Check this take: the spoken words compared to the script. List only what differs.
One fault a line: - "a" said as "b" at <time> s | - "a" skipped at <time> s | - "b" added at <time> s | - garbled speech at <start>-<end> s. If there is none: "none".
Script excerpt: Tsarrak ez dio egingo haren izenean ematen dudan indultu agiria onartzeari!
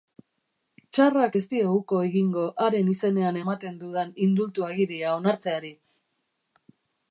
- "uko" added at 1.8 s